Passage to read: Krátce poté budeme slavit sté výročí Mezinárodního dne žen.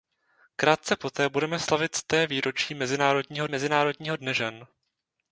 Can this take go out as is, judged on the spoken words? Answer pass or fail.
fail